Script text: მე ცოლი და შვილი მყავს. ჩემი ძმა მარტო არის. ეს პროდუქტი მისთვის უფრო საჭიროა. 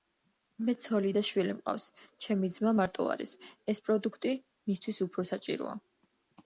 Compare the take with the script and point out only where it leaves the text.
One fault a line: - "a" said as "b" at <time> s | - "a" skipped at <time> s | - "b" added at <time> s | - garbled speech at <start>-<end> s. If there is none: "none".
none